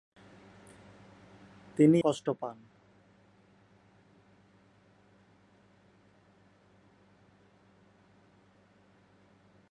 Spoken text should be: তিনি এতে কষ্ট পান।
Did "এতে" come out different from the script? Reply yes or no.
yes